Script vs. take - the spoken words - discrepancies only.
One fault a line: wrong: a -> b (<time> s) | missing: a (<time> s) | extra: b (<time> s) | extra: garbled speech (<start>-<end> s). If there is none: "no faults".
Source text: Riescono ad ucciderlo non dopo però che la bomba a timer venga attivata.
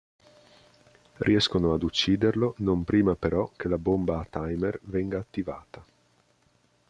wrong: dopo -> prima (2.8 s)